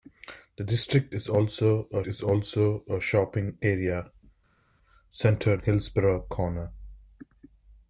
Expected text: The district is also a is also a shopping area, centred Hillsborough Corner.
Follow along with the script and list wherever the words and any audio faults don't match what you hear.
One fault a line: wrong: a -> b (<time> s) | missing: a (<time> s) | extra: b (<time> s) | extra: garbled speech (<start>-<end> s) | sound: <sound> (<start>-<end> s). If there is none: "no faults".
no faults